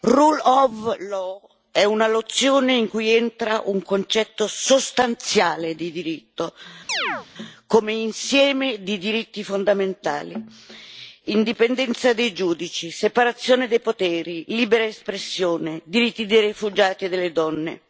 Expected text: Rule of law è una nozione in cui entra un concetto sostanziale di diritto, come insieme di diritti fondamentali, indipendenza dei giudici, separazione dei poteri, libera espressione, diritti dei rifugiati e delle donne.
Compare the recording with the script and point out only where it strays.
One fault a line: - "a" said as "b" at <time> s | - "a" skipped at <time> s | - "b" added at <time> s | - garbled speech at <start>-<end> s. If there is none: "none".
none